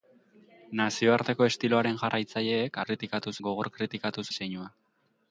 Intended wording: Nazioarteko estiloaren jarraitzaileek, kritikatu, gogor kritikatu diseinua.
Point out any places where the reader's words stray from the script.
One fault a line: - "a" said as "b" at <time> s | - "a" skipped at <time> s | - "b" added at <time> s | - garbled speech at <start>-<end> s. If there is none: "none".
none